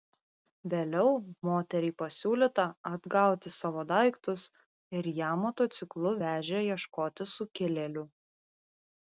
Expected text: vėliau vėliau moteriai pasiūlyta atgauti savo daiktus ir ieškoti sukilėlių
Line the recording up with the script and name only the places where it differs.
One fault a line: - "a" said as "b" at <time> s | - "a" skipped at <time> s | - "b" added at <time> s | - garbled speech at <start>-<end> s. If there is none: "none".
- "vėliau" skipped at 1.1 s
- "ją motociklu vežė" added at 5.2 s